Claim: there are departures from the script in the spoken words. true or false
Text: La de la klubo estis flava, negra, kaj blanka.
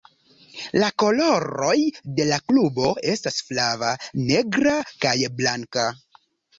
true